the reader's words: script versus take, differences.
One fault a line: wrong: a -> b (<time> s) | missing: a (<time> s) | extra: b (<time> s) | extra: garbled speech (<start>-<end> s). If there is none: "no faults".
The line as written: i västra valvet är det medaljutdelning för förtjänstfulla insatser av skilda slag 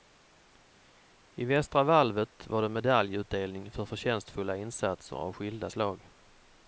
wrong: är -> var (2.5 s)